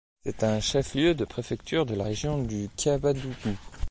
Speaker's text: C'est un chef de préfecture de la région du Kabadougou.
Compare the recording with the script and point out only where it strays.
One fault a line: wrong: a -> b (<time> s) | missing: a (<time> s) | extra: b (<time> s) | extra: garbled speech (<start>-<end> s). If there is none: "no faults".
extra: lieu (0.9 s)